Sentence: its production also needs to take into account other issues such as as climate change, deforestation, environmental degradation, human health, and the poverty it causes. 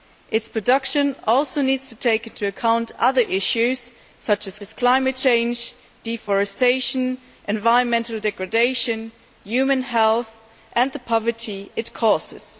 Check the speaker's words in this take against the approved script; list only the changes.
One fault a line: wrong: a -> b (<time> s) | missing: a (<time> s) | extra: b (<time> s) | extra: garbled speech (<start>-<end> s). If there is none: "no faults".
no faults